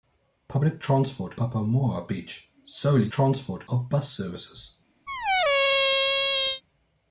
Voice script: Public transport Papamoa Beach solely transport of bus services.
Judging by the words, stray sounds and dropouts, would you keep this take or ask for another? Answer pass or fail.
fail